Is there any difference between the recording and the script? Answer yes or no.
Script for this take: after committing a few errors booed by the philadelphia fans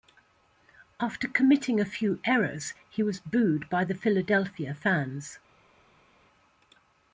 yes